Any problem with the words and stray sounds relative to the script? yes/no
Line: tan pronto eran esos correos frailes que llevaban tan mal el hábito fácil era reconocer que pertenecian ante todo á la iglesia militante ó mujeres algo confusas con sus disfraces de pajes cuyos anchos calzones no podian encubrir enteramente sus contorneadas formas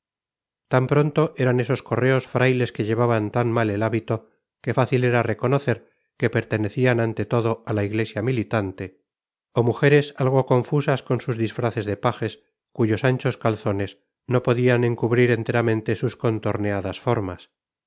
yes